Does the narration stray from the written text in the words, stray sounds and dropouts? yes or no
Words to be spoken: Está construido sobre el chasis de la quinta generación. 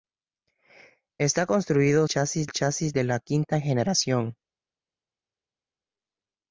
yes